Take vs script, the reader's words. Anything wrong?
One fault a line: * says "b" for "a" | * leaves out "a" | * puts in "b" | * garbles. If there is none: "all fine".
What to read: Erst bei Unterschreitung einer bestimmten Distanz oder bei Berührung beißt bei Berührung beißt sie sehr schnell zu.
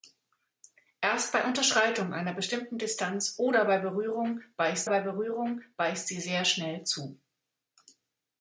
all fine